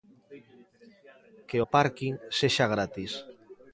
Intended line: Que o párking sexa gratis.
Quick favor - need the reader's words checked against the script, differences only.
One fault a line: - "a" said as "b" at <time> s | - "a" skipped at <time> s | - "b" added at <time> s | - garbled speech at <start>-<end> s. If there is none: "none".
none